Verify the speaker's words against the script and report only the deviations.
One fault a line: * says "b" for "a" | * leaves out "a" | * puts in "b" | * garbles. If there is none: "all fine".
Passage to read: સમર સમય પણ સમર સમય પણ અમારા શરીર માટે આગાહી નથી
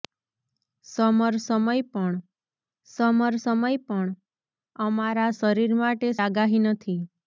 all fine